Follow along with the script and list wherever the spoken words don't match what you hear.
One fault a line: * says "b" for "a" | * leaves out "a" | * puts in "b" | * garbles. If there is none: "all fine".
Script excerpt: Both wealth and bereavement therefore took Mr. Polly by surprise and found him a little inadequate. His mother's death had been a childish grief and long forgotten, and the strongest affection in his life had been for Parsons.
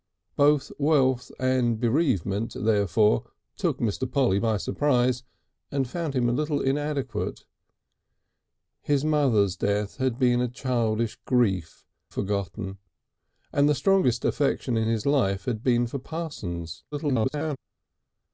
* leaves out "and long"
* garbles